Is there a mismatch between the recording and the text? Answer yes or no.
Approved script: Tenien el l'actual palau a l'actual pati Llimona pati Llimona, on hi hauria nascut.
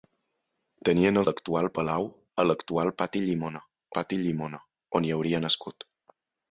no